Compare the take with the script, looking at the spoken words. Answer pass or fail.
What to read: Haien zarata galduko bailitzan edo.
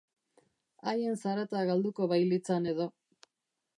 pass